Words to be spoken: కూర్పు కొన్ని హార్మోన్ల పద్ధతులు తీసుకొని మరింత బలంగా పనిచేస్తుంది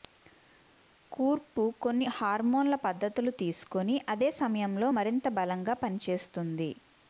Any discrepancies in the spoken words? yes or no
yes